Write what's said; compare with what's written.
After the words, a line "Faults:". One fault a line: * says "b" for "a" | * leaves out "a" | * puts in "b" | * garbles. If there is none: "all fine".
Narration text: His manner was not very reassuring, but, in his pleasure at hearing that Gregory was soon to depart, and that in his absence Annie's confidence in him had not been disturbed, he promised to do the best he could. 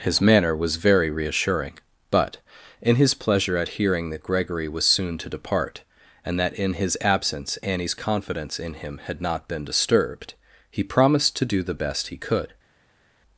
His manner was very reassuring, but, in his pleasure at hearing that Gregory was soon to depart, and that in his absence Annie's confidence in him had not been disturbed, he promised to do the best he could.
Faults:
* leaves out "not"